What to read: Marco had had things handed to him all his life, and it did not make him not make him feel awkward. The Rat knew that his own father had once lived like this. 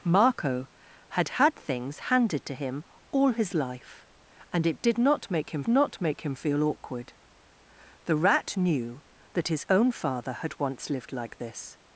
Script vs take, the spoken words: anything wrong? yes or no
no